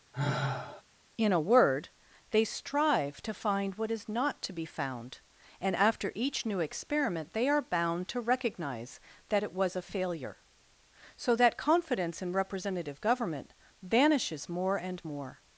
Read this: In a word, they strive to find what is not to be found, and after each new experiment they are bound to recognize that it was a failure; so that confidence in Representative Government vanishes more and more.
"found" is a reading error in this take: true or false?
false